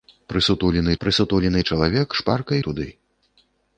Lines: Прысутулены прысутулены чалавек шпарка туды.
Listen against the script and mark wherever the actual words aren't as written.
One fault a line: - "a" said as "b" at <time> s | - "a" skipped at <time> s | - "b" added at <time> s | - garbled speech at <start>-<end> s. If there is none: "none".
none